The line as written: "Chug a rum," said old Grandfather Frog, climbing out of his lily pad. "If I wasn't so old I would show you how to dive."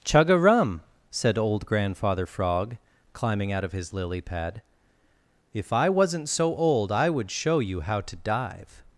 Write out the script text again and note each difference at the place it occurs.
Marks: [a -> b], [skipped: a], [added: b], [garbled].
"Chug a rum," said old Grandfather Frog, climbing out of his lily pad. "If I wasn't so old I would show you how to dive."